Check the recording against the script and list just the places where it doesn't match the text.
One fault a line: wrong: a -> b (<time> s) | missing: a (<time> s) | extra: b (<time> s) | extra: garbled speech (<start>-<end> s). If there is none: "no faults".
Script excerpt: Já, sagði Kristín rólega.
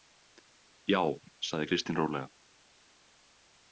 no faults